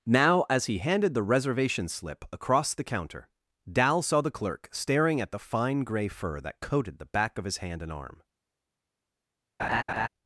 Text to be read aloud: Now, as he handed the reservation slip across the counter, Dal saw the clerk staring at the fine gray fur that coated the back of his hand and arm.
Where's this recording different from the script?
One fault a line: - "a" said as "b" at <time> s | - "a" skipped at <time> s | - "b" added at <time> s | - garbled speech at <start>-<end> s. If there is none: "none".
none